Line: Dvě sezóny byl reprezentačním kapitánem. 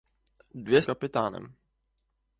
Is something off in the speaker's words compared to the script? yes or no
yes